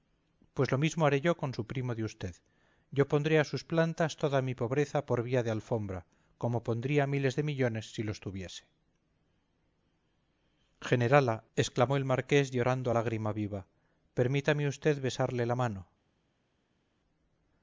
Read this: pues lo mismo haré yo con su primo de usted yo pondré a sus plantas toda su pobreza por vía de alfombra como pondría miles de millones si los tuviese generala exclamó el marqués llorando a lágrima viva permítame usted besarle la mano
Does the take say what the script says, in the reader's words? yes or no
no